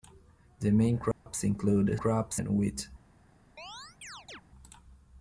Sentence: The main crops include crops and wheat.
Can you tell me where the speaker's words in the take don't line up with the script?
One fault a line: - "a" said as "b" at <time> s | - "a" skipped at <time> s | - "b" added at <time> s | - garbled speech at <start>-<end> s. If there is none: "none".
none